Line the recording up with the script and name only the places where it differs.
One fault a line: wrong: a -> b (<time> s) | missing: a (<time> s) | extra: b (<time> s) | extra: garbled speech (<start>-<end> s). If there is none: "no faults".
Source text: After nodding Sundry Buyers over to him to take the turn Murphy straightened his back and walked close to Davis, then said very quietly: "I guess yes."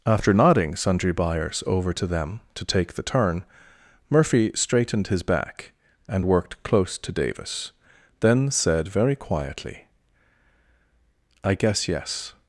wrong: him -> them (2.1 s)
wrong: walked -> worked (6.2 s)